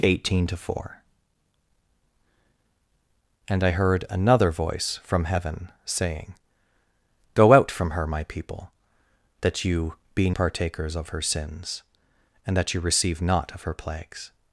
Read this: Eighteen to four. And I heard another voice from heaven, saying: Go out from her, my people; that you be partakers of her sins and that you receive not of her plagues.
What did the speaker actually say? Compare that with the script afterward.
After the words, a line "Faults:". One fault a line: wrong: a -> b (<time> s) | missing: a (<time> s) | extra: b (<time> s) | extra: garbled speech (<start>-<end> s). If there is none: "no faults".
Eighteen to four. And I heard another voice from heaven, saying: Go out from her, my people; that you be partakers of her sins and that you receive not of her plagues.
Faults:
no faults